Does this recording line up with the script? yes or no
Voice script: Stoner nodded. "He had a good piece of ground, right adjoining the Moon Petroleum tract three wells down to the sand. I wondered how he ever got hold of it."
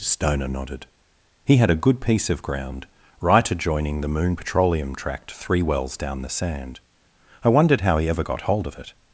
no